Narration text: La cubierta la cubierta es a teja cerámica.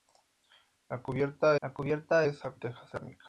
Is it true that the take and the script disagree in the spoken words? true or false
false